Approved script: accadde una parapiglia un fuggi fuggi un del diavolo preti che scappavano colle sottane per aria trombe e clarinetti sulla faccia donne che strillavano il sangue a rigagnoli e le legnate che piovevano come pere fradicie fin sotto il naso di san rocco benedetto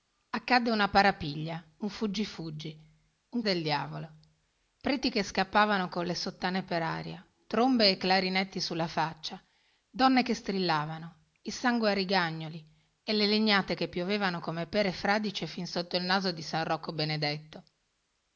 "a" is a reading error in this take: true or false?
false